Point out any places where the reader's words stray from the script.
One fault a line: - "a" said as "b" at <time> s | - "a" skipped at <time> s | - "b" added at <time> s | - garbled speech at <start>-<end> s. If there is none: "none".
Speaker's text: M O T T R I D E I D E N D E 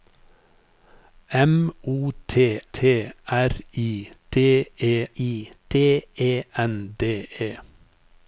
none